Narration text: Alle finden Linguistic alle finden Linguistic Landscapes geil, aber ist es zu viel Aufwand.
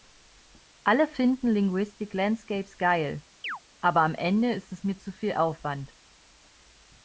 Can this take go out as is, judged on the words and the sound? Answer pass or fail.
fail